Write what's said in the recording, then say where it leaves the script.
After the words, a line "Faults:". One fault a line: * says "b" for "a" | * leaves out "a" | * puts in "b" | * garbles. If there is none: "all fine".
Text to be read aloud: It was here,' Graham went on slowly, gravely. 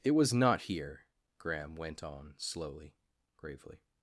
It was not here,' Graham went on slowly, gravely.
Faults:
* puts in "not"